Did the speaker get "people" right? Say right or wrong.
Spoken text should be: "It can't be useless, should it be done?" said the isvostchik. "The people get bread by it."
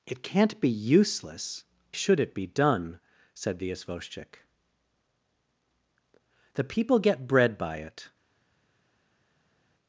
right